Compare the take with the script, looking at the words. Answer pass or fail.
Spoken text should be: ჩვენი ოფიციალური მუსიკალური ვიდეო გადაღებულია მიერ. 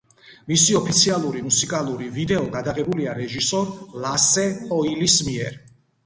fail